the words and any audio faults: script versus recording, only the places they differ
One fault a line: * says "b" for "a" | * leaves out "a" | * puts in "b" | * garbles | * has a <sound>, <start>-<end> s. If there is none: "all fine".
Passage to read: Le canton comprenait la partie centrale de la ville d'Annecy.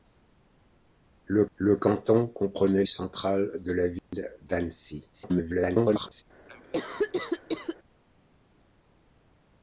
* puts in "le"
* leaves out "la partie"
* has a dropout, 4.0-4.1 s
* garbles
* has a cough, 6.5-7.8 s